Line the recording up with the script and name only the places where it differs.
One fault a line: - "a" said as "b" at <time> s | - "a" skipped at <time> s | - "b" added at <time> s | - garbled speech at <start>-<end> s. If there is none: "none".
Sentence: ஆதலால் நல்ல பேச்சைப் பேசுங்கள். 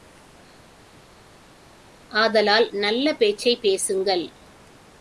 none